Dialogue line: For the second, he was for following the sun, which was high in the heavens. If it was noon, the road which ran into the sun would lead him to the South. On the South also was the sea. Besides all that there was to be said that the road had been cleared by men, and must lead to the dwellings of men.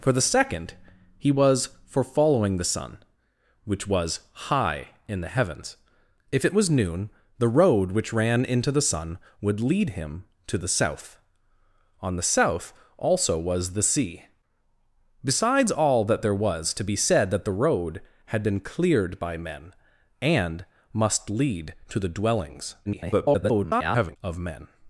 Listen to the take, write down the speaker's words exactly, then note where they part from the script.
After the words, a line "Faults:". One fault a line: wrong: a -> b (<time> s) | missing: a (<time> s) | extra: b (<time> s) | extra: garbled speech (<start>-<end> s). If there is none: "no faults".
For the second, he was for following the sun, which was high in the heavens. If it was noon, the road which ran into the sun would lead him to the South. On the South also was the sea. Besides all that there was to be said that the road had been cleared by men, and must lead to the dwellings [garbled] of men.
Faults:
extra: garbled speech (22.9-24.2 s)